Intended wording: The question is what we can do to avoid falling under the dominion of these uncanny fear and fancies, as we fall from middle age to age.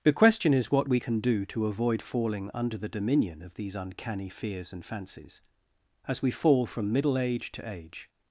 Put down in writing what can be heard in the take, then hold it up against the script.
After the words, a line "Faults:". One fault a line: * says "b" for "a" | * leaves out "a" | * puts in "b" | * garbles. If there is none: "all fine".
The question is what we can do to avoid falling under the dominion of these uncanny fears and fancies, as we fall from middle age to age.
Faults:
* says "fears" for "fear"